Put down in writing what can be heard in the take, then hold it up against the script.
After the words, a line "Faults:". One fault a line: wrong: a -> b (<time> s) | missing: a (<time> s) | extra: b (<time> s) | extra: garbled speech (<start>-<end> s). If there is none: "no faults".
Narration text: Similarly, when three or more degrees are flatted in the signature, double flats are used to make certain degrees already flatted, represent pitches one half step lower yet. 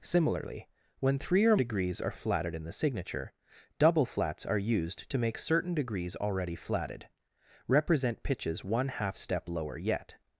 Similarly, when three or degrees are flatted in the signature, double flats are used to make certain degrees already flatted, represent pitches one half step lower yet.
Faults:
missing: more (1.6 s)